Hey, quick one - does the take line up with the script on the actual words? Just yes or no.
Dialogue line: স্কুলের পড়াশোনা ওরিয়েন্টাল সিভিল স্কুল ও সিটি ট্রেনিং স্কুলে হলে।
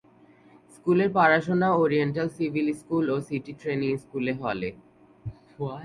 yes